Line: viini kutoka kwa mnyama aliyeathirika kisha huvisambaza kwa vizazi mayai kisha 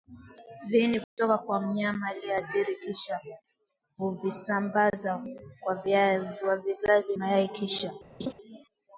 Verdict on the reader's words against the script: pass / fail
pass